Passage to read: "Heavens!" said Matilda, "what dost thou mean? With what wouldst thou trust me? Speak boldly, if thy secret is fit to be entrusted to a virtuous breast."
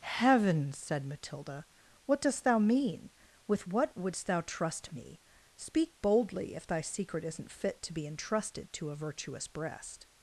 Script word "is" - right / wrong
wrong